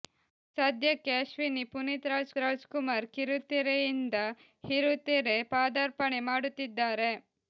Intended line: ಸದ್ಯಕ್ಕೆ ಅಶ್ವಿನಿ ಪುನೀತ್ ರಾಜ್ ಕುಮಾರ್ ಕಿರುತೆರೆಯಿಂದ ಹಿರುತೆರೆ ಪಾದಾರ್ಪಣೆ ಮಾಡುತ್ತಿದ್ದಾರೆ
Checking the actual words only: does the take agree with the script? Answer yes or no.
no